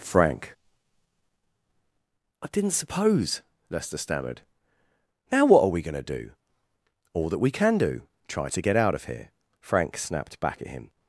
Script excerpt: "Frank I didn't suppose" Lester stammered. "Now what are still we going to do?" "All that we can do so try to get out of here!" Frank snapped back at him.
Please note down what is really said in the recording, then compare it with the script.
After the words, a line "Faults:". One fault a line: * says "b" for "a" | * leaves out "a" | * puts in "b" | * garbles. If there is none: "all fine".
"Frank I didn't suppose" Lester stammered. "Now what are we going to do?" "All that we can do try to get out of here!" Frank snapped back at him.
Faults:
* leaves out "still"
* leaves out "so"